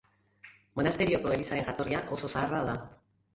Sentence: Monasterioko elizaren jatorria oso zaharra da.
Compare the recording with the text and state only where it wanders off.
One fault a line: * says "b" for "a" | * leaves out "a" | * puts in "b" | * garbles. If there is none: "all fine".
all fine